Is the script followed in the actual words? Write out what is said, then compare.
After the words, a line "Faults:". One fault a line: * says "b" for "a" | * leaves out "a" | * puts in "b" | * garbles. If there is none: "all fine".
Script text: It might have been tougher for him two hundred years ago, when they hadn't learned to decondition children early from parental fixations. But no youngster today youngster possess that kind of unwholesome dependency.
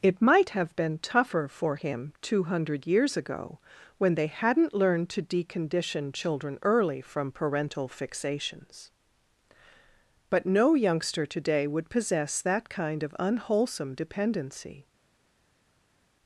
It might have been tougher for him two hundred years ago, when they hadn't learned to decondition children early from parental fixations. But no youngster today would possess that kind of unwholesome dependency.
Faults:
* says "would" for "youngster"